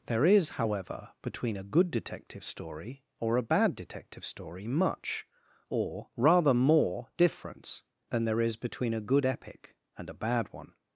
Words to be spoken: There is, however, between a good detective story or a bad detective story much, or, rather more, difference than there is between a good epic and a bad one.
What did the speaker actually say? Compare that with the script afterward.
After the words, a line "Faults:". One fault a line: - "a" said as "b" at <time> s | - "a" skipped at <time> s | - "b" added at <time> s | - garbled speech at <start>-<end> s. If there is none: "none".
There is, however, between a good detective story or a bad detective story much, or, rather more, difference than there is between a good epic and a bad one.
Faults:
none